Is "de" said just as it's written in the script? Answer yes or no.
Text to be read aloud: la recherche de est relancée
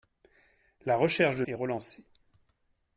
yes